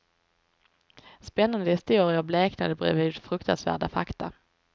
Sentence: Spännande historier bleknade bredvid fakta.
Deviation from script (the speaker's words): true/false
true